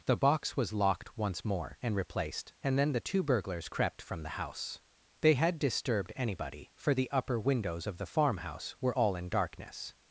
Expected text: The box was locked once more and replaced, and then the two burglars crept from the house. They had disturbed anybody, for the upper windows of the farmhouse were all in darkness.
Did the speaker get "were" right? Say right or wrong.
right